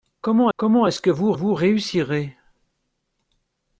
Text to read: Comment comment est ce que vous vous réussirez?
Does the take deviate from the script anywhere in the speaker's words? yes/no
no